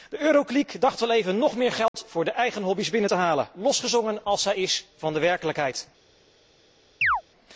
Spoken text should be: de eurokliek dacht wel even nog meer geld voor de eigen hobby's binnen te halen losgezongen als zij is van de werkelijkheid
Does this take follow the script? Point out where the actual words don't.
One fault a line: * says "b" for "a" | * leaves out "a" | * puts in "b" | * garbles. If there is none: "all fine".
all fine